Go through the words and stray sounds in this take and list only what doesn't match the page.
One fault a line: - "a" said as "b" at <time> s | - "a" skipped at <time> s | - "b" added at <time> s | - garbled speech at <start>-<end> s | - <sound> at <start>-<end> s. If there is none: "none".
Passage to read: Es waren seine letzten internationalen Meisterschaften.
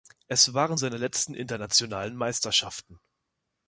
none